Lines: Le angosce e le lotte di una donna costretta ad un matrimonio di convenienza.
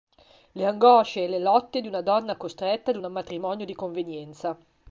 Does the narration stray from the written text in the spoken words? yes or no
no